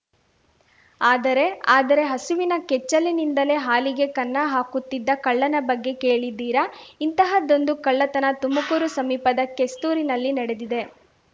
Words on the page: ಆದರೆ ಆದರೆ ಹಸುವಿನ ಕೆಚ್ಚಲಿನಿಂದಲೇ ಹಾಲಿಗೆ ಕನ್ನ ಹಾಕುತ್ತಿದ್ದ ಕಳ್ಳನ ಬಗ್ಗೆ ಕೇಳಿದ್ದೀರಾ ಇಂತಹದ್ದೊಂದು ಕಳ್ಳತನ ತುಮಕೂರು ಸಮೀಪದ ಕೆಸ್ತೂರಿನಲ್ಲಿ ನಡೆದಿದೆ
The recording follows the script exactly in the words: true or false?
true